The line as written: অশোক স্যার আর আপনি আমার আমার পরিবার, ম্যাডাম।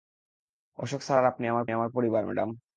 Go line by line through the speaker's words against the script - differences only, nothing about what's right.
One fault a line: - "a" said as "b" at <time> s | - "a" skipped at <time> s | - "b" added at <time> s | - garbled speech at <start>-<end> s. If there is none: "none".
none